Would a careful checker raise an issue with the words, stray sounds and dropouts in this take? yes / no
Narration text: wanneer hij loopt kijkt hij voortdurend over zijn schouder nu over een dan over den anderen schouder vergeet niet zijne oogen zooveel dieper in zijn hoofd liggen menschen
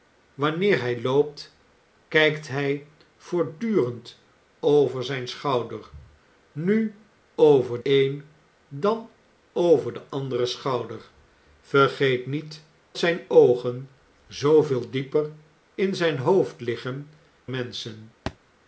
yes